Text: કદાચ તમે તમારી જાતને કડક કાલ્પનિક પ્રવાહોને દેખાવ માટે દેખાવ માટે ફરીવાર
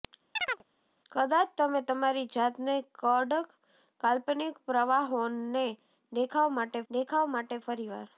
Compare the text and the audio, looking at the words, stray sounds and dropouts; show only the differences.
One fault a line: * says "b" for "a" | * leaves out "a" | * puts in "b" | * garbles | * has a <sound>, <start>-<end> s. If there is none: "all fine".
* has a chirp, 0.4-0.6 s